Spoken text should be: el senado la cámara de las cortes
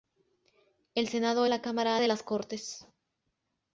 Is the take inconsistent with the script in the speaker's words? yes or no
no